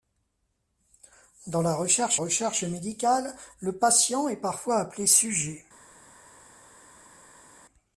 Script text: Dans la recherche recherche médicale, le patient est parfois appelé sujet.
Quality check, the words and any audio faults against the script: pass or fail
pass